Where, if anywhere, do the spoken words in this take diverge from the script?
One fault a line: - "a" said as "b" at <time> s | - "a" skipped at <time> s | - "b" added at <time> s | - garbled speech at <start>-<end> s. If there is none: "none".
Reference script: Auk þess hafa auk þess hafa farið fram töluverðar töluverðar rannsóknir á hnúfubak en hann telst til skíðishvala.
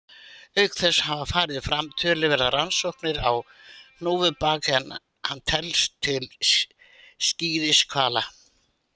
- "auk þess hafa" skipped at 1.2 s
- "töluverðar" skipped at 2.5 s